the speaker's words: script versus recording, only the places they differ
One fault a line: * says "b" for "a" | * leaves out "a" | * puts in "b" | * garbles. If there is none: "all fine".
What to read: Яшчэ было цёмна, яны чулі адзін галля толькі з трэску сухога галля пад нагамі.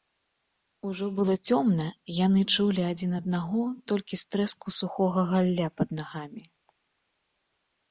* says "Ужо" for "Яшчэ"
* says "аднаго" for "галля"